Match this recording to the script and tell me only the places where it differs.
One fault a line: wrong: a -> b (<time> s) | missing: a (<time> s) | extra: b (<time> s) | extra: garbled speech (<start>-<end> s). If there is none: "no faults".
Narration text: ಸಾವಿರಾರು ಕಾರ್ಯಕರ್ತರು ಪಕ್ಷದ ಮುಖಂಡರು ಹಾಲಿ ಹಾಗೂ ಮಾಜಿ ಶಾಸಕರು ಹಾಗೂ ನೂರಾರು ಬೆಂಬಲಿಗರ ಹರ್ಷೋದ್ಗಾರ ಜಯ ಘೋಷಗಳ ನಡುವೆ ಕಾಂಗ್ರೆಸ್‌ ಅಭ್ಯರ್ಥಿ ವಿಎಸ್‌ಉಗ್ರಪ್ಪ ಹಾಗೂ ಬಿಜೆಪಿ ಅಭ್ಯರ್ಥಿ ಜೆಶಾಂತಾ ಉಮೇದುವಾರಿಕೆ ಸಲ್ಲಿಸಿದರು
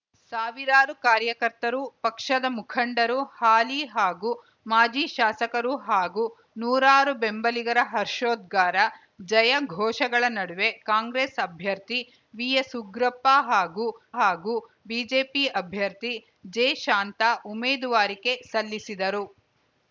extra: ಹಾಗೂ (14.2 s)